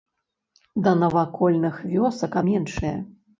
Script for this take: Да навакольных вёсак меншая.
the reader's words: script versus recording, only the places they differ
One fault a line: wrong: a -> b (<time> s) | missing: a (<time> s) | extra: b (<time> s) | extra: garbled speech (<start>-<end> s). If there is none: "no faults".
no faults